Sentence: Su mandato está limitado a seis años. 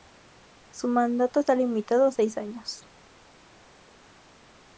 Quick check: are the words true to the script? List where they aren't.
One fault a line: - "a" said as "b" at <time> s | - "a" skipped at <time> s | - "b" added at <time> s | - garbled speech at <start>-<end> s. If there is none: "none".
none